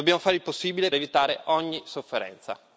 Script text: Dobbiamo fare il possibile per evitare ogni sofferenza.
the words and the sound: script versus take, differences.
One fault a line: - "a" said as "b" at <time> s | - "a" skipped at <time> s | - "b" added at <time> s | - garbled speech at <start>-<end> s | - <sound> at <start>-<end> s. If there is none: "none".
- "per" skipped at 0.9 s